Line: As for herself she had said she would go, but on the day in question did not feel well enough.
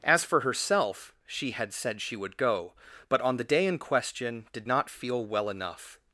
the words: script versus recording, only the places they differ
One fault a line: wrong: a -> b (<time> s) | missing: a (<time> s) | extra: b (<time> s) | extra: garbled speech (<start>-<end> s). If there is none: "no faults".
no faults